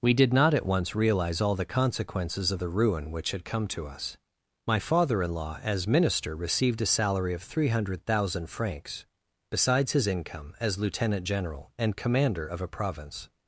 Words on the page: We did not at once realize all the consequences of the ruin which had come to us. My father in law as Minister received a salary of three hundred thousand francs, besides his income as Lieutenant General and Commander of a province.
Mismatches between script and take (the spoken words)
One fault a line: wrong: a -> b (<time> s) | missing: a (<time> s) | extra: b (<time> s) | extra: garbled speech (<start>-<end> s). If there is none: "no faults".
no faults